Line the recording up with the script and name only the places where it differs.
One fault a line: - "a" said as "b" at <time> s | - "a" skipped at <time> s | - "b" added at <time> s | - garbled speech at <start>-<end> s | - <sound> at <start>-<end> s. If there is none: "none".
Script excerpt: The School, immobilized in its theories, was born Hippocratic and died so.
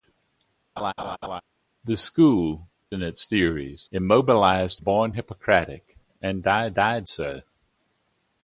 - laugh at 0.8-1.4 s
- "immobilized" skipped at 2.7 s
- "was" said as "immobilized" at 3.9 s
- "died" added at 6.7 s